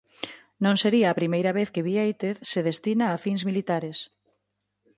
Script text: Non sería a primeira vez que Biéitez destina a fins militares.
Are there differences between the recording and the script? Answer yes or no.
yes